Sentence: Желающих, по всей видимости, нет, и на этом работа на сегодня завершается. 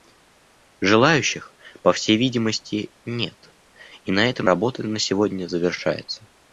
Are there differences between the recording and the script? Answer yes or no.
no